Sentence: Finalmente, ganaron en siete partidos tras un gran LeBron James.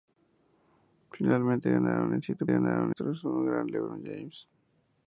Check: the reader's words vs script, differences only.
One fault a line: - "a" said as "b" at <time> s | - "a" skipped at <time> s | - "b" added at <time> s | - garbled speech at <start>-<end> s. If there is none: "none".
- "partidos" said as "ganaron" at 2.5 s